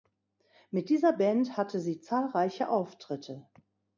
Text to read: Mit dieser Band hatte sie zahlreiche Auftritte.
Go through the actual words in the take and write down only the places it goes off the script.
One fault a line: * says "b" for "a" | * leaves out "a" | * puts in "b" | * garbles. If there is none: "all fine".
all fine